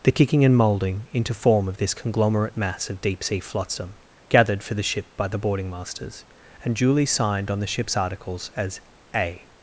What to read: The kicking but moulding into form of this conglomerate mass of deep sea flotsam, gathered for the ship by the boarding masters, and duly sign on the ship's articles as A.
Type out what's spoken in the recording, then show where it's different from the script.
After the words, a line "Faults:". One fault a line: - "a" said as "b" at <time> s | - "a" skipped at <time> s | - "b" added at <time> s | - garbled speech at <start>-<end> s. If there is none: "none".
The kicking and moulding into form of this conglomerate mass of deep sea flotsam, gathered for the ship by the boarding masters, and duly signed on the ship's articles as A.
Faults:
- "but" said as "and" at 0.4 s
- "sign" said as "signed" at 7.0 s